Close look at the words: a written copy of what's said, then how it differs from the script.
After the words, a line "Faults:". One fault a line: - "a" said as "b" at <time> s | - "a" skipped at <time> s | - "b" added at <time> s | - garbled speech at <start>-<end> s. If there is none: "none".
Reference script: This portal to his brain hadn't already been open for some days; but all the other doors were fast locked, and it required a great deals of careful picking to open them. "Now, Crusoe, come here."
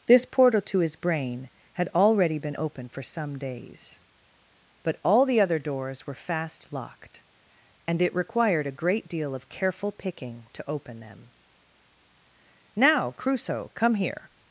This portal to his brain had already been open for some days; but all the other doors were fast locked, and it required a great deal of careful picking to open them. "Now, Crusoe, come here."
Faults:
- "hadn't" said as "had" at 1.7 s
- "deals" said as "deal" at 9.1 s